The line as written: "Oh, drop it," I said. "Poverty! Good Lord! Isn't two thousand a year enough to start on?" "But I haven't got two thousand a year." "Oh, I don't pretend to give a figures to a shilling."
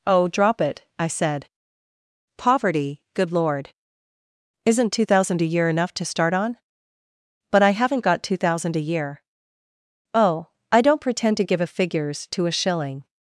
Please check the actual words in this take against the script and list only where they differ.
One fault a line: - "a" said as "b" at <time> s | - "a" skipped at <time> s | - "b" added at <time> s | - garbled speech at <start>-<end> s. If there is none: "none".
none